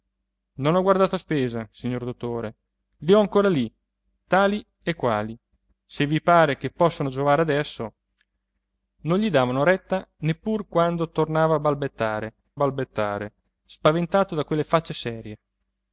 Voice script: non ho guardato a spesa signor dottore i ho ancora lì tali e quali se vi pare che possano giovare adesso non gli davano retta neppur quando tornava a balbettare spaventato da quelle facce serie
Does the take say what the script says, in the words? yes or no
no